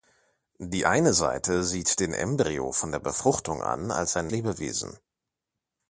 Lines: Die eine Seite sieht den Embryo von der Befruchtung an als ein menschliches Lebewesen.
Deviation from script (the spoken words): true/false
true